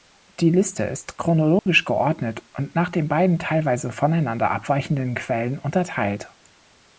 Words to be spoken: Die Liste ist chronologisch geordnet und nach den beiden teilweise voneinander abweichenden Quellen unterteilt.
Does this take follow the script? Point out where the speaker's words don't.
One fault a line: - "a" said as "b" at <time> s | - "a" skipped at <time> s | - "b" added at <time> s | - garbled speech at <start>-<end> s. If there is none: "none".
none